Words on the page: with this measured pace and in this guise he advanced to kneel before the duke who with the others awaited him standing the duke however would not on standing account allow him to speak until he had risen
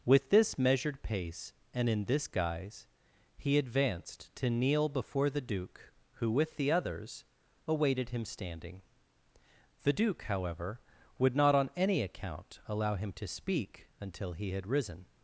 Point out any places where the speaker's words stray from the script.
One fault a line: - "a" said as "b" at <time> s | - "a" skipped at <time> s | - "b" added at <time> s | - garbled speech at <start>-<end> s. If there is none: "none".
- "standing" said as "any" at 11.8 s